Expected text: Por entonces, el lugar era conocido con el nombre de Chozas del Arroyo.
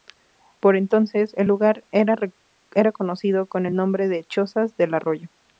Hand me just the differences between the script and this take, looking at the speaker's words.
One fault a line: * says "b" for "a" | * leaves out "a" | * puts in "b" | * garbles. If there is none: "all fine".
all fine